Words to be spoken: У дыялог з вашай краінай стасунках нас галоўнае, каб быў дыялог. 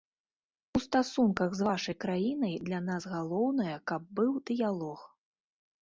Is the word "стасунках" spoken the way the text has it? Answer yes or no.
no